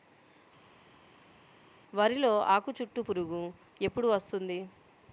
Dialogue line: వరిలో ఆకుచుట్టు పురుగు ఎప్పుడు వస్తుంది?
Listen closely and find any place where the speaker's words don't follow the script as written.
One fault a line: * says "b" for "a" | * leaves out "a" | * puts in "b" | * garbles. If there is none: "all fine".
all fine